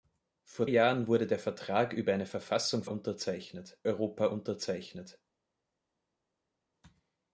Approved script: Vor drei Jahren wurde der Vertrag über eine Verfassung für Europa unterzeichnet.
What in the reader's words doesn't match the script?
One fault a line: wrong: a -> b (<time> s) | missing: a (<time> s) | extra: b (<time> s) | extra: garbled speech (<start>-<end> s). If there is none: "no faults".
missing: drei (0.7 s)
wrong: für -> unterzeichnet (2.8 s)